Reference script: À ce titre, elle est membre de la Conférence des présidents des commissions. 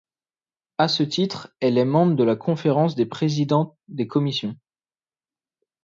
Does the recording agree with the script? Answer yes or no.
yes